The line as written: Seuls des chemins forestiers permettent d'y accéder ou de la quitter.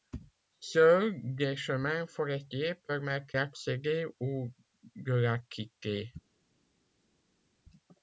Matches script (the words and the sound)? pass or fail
fail